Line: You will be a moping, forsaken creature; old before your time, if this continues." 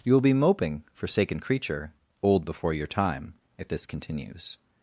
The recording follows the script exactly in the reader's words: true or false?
false